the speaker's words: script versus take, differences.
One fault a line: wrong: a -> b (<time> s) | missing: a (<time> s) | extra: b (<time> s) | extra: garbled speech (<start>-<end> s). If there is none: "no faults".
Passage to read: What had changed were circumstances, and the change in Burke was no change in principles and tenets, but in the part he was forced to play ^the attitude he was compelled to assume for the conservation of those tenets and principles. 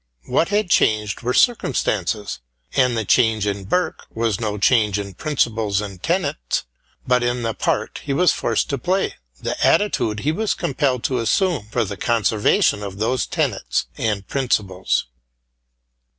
no faults